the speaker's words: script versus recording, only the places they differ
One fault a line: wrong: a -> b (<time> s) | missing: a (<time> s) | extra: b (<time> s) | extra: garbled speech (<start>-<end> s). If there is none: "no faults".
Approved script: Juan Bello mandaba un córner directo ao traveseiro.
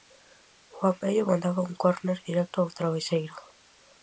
no faults